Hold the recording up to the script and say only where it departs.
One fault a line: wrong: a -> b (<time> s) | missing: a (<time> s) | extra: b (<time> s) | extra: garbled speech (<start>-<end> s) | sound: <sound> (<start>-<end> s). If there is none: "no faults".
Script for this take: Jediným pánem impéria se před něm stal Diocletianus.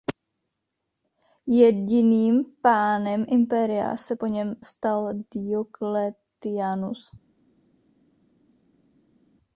wrong: před -> po (4.1 s)